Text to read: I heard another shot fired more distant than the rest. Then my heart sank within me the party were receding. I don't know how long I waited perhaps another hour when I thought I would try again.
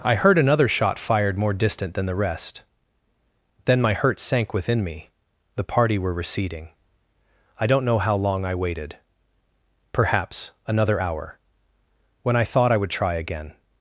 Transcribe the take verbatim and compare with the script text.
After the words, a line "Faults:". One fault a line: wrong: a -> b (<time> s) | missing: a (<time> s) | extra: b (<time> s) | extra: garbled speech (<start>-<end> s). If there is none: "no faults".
I heard another shot fired more distant than the rest. Then my hurt sank within me the party were receding. I don't know how long I waited perhaps another hour when I thought I would try again.
Faults:
wrong: heart -> hurt (3.9 s)